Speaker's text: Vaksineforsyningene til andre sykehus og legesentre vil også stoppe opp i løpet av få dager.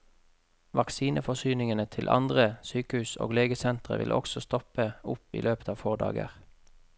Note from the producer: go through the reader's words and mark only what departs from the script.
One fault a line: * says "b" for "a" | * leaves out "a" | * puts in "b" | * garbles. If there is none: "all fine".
all fine